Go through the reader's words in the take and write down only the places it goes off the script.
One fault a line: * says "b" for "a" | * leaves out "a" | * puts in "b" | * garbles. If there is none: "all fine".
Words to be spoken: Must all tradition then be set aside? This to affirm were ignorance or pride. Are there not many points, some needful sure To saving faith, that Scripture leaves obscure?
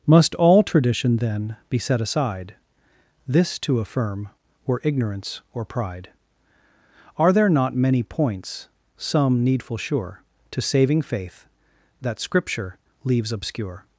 all fine